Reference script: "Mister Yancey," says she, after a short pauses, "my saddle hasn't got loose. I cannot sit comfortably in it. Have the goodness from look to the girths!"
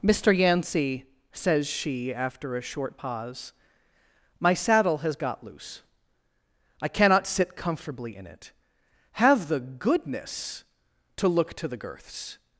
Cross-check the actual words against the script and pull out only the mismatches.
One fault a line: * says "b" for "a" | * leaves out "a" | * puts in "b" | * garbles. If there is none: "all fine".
* says "pause" for "pauses"
* says "has" for "hasn't"
* says "to" for "from"